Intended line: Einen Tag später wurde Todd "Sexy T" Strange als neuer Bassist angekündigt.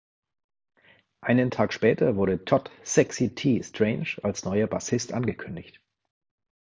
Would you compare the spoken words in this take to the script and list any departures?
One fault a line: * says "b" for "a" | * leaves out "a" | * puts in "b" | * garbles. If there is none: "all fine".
all fine